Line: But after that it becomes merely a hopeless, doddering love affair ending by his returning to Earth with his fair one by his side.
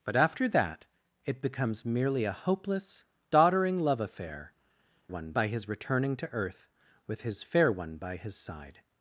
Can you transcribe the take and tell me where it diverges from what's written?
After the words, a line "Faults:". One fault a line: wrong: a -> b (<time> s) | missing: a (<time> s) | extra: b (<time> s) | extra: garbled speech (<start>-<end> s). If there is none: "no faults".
But after that it becomes merely a hopeless, doddering love affair one by his returning to Earth with his fair one by his side.
Faults:
wrong: ending -> one (5.1 s)